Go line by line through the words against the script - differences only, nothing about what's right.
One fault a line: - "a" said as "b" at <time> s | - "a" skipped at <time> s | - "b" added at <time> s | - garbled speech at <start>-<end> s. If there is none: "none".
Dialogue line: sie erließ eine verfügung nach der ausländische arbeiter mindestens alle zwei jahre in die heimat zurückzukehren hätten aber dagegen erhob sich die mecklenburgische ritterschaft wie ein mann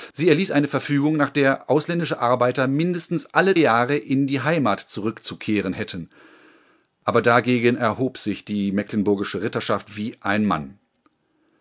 - "zwei" skipped at 3.6 s